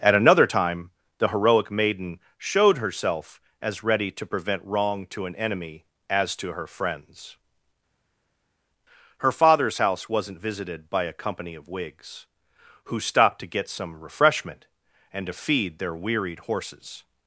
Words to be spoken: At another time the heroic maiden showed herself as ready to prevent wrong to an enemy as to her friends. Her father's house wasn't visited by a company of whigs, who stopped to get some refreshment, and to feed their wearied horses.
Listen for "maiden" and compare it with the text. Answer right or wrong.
right